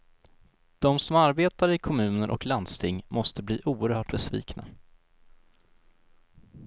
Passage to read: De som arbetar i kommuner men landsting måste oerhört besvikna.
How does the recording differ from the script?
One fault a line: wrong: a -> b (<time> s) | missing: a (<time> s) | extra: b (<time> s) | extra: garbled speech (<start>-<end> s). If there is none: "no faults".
wrong: men -> och (2.3 s)
extra: bli (3.4 s)